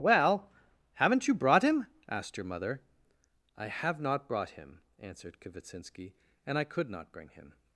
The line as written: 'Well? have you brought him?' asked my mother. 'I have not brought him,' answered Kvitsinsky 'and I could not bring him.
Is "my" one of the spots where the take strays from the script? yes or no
yes